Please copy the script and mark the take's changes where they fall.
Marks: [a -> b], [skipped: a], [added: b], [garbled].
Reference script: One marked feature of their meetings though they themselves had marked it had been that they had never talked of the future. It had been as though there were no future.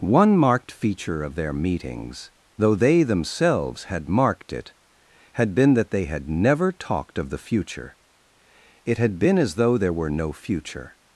One marked feature of their meetings though they themselves had marked it had been that they had never talked of the future. It had been as though there were no future.